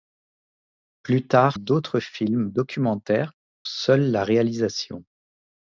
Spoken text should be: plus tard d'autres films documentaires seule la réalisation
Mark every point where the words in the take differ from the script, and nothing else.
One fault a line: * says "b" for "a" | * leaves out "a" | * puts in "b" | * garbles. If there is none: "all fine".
all fine